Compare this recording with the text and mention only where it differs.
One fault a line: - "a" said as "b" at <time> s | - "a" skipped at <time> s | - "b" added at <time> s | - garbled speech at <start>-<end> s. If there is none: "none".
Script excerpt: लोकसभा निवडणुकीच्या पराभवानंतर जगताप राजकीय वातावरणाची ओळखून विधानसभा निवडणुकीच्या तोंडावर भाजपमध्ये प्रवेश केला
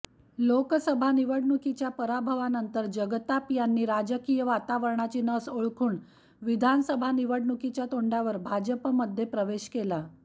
- "यांनी" added at 3.5 s
- "नस" added at 5.2 s